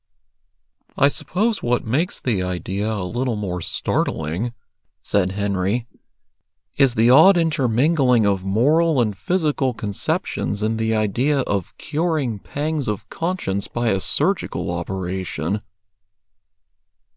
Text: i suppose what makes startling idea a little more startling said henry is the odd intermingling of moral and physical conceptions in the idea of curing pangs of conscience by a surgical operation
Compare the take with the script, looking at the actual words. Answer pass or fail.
fail